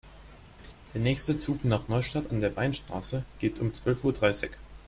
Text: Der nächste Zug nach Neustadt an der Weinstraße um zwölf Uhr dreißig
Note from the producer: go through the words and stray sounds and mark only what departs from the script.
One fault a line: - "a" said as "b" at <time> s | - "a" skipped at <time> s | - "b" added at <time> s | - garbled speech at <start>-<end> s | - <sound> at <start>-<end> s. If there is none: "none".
- laugh at 0.6-0.7 s
- "geht" added at 3.4 s